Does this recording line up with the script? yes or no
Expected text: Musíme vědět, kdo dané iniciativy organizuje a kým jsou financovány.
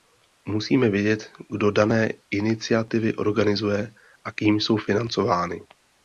yes